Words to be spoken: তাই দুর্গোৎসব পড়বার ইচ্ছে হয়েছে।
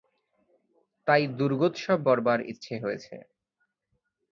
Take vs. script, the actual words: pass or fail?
pass